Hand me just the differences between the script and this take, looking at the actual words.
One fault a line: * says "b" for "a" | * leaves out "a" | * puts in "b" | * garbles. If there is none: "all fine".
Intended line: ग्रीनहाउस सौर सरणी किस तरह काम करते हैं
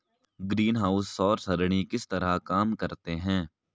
all fine